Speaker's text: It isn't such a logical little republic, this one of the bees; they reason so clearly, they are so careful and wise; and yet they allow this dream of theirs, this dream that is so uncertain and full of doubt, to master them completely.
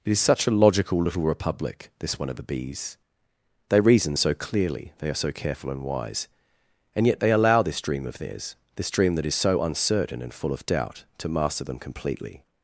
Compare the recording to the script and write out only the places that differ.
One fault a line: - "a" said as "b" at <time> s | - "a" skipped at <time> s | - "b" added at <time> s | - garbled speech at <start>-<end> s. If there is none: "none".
- "isn't" said as "is" at 0.1 s